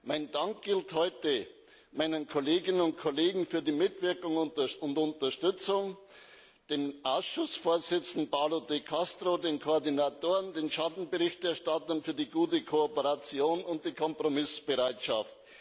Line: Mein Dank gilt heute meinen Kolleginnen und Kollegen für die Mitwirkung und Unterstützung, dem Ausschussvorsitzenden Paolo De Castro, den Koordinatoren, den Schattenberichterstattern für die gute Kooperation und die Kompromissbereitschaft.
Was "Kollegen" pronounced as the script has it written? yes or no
yes